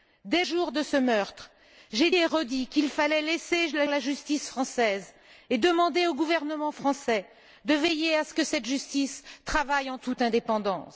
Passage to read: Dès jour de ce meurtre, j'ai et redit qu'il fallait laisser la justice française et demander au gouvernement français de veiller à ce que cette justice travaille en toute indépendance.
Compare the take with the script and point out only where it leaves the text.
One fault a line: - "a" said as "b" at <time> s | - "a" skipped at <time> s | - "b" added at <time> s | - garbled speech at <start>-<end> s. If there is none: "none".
none